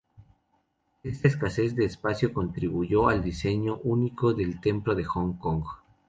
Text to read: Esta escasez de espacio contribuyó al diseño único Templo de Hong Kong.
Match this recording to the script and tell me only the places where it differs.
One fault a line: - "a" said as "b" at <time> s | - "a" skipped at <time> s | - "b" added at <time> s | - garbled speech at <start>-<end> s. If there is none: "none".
- "del" added at 4.3 s